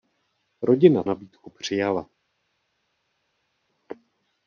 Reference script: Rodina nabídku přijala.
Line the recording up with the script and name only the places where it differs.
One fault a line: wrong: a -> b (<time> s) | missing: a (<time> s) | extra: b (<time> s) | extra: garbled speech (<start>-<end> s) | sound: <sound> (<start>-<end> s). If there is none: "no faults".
no faults